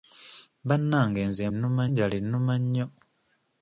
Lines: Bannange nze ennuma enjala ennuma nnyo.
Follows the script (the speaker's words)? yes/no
yes